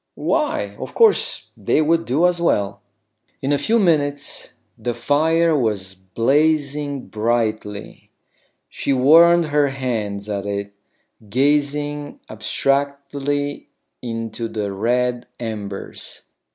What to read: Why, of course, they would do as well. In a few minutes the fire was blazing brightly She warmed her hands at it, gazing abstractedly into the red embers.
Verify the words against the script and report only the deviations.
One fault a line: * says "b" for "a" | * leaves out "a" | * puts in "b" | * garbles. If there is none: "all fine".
all fine